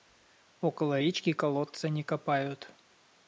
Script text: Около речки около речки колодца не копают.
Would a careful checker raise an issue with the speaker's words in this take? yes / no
yes